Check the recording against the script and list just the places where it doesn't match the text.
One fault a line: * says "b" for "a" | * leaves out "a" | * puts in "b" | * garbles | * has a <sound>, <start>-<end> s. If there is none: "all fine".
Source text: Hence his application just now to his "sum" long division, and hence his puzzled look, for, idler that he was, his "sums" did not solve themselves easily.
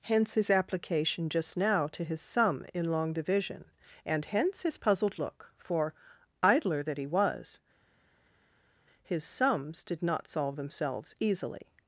* puts in "in"